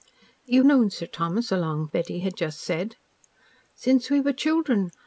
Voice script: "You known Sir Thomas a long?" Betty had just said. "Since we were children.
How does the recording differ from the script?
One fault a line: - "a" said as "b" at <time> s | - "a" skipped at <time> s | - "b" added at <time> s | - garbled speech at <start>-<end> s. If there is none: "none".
none